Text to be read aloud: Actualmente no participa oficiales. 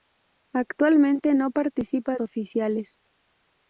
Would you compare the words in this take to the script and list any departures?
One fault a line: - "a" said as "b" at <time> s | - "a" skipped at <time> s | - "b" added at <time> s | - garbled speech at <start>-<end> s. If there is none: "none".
none